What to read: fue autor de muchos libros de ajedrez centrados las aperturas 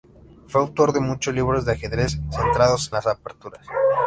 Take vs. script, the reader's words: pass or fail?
pass